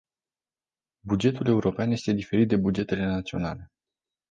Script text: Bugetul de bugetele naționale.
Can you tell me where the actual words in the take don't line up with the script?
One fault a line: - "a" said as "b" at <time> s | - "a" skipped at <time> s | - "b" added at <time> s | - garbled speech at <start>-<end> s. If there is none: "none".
- "european este diferit" added at 1.5 s